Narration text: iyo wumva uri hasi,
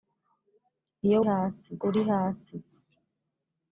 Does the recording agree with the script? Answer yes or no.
no